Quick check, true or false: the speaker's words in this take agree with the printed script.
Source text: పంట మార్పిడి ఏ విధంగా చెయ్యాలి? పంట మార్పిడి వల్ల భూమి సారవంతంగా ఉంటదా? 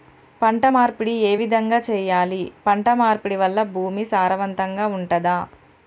true